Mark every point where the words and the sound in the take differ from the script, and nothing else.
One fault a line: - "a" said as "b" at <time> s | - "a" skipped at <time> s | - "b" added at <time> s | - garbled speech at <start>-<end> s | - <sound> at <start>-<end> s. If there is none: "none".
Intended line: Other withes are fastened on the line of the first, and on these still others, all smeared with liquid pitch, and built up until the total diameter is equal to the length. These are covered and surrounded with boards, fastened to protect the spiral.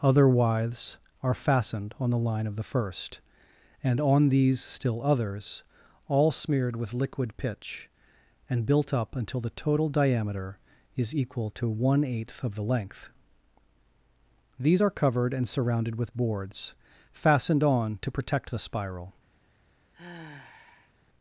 - "one eighth of" added at 11.7 s
- "on" added at 17.6 s
- sigh at 19.9-20.9 s